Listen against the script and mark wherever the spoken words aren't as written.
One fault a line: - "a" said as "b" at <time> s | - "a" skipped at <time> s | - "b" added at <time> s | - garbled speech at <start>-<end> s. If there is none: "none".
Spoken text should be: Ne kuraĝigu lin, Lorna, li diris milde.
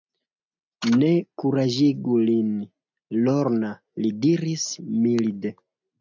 none